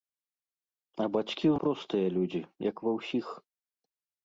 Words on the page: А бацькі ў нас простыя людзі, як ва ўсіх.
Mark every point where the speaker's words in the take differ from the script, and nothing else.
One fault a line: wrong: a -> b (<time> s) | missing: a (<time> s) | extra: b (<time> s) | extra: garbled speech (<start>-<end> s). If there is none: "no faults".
missing: нас (1.6 s)